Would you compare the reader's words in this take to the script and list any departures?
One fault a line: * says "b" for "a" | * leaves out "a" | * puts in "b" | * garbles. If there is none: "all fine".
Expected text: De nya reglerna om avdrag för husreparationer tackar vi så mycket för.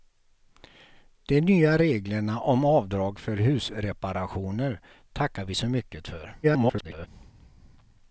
* garbles